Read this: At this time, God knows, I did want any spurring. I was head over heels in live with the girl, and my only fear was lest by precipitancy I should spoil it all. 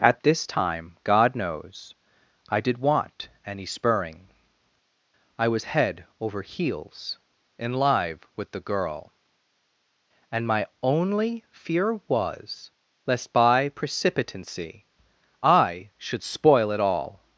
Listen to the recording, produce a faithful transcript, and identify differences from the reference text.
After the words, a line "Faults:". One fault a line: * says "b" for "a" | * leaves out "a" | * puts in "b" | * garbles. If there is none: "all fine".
At this time, God knows, I did want any spurring. I was head over heels in live with the girl, and my only fear was lest by precipitancy I should spoil it all.
Faults:
all fine